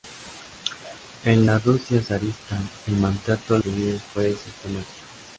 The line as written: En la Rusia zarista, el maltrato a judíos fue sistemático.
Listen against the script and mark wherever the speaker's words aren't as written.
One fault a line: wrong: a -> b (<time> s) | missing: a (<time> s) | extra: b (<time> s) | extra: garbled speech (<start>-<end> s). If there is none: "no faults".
no faults